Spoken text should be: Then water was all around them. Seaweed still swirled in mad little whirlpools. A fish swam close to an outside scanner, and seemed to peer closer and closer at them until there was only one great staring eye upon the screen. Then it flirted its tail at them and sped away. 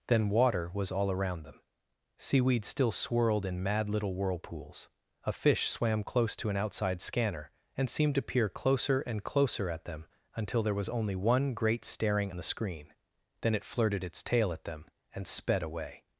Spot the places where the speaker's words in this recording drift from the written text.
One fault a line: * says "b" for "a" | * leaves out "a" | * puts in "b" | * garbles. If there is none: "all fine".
* leaves out "eye upon"